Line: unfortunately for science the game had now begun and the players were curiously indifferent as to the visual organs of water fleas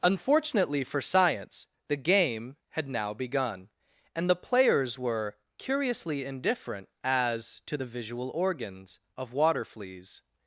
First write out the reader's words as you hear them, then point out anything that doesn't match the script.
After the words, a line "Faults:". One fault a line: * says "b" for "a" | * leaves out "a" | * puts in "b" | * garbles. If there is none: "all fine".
unfortunately for science the game had now begun and the players were curiously indifferent as to the visual organs of water fleas
Faults:
all fine